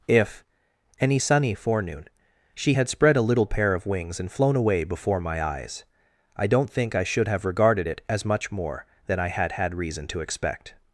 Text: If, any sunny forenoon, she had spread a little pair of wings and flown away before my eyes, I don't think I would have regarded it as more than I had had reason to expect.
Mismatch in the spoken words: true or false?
true